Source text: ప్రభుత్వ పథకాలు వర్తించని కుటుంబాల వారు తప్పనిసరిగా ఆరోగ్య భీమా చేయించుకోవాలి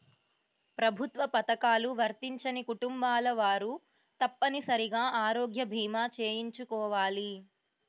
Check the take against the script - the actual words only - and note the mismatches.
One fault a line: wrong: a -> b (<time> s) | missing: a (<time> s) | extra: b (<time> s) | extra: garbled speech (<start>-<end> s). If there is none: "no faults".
no faults